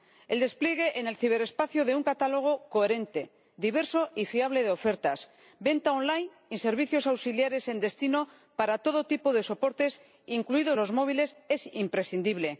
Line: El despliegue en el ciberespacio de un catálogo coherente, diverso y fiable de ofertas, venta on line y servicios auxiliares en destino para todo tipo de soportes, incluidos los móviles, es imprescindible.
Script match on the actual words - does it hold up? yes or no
yes